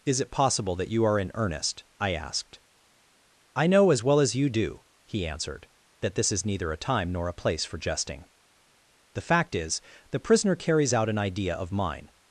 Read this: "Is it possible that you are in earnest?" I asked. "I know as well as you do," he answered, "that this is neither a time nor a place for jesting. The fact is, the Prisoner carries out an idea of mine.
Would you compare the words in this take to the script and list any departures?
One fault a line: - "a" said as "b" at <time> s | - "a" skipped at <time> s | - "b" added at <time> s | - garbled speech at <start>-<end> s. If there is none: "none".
none